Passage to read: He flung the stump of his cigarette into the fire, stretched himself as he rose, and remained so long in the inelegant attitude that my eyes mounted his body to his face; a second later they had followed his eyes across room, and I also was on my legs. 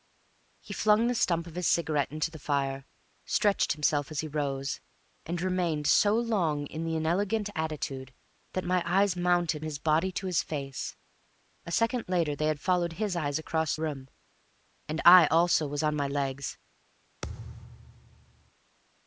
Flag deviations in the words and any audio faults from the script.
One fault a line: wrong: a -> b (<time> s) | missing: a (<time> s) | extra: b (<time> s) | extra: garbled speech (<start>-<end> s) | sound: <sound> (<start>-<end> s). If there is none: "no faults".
sound: thud (17.2-18.5 s)